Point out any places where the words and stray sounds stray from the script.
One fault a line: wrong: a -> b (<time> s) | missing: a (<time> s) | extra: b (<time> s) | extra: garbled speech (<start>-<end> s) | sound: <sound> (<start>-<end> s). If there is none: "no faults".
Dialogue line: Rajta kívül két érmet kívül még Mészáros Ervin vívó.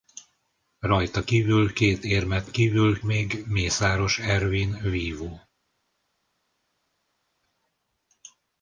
no faults